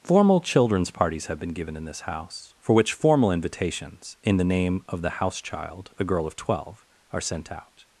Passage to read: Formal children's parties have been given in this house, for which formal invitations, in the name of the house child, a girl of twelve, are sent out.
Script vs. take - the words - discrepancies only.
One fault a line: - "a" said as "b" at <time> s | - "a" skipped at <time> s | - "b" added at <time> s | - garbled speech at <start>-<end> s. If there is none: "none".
none